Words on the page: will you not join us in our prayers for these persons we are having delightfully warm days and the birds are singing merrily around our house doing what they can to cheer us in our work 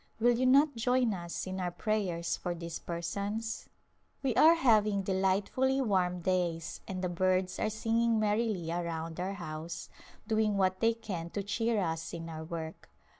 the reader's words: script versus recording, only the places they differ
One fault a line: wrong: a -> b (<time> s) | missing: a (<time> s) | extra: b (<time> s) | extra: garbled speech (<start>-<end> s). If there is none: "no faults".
no faults